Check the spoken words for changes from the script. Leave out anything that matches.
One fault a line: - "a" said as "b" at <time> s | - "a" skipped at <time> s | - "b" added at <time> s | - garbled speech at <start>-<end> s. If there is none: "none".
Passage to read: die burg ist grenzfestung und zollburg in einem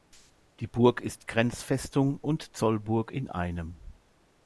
none